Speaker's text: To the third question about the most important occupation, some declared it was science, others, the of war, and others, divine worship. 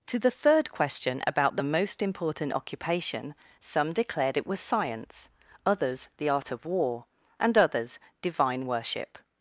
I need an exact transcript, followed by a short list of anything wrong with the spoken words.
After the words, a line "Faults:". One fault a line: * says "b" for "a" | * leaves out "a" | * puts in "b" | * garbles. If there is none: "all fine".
To the third question about the most important occupation, some declared it was science, others, the art of war, and others, divine worship.
Faults:
* puts in "art"